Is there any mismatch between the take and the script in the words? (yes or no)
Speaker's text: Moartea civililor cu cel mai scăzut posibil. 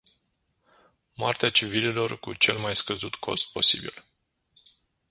yes